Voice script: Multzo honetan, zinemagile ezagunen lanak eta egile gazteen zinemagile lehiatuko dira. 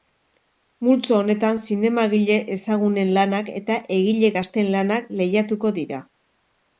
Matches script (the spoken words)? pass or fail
fail